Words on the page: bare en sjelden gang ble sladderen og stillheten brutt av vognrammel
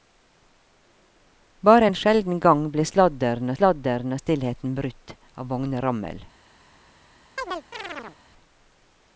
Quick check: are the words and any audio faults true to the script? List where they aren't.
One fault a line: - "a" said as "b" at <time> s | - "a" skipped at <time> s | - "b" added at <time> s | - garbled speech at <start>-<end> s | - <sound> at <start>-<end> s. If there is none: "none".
- "sladderen" added at 3.6 s
- chirp at 7.4-8.2 s